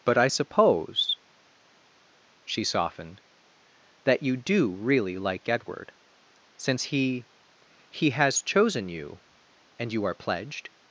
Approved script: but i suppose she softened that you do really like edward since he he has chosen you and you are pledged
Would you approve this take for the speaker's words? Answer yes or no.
yes